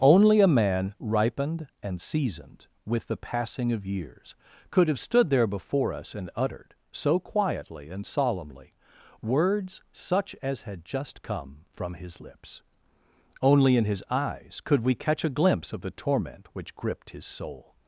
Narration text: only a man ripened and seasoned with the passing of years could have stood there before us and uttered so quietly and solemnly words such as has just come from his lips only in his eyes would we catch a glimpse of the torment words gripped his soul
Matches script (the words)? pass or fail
fail